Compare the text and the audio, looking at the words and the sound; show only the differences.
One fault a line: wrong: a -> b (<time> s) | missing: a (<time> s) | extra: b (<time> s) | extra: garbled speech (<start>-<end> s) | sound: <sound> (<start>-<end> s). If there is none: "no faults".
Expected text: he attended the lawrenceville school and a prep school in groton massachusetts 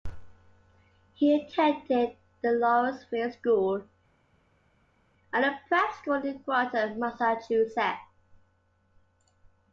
no faults